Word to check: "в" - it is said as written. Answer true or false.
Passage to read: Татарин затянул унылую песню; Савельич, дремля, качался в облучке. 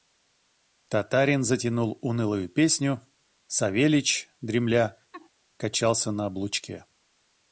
false